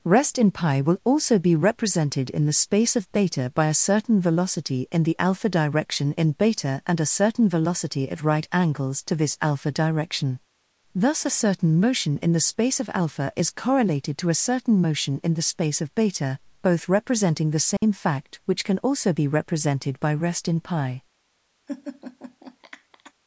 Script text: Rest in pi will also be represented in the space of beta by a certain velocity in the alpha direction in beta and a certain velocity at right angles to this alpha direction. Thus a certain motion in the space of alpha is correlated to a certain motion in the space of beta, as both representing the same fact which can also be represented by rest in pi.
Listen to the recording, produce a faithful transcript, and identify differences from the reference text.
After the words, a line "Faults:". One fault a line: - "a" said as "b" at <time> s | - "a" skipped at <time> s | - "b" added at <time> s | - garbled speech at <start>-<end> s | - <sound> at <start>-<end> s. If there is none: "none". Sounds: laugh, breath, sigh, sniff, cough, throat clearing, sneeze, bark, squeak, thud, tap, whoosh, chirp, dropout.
Rest in pi will also be represented in the space of beta by a certain velocity in the alpha direction in beta and a certain velocity at right angles to this alpha direction. Thus a certain motion in the space of alpha is correlated to a certain motion in the space of beta, both representing the same fact which can also be represented by rest in pi.
Faults:
- "as" skipped at 16.4 s
- dropout at 17.8-17.8 s
- laugh at 21.7-23.1 s